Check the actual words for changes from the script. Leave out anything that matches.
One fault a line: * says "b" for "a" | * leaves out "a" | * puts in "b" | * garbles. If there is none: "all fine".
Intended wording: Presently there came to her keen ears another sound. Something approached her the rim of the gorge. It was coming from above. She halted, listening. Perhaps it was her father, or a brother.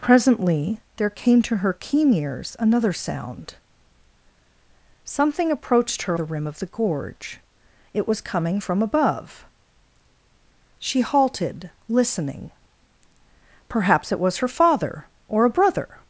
all fine